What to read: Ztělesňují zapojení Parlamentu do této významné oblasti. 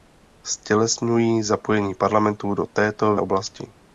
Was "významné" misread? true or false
true